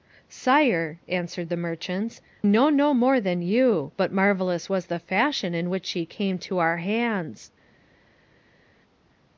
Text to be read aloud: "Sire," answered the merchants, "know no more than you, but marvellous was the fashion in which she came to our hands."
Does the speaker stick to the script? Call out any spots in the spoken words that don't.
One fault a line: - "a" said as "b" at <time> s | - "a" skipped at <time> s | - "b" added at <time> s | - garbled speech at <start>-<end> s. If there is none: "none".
none